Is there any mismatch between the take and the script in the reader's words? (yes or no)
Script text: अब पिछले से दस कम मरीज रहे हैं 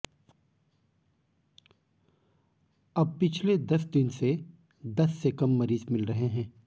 yes